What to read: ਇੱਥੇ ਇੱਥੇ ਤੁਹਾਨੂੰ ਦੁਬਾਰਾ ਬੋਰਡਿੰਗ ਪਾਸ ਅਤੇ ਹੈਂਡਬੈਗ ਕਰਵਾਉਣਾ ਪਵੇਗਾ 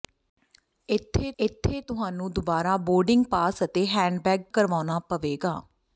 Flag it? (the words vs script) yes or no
no